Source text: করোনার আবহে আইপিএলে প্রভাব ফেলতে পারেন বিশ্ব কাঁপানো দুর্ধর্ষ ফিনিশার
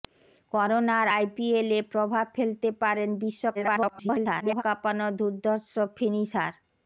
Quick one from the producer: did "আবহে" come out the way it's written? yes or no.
no